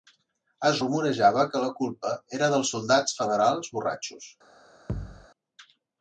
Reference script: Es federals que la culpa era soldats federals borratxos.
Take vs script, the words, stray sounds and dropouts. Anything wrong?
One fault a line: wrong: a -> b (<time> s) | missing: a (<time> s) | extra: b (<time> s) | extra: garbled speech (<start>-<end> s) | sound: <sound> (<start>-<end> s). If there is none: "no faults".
wrong: federals -> rumorejava (0.8 s)
extra: dels (2.5 s)
sound: thud (4.9-5.3 s)